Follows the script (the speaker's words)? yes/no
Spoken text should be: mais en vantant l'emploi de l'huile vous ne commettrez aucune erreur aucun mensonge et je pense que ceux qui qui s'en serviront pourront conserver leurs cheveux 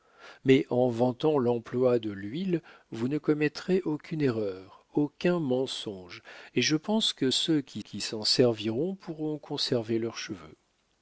yes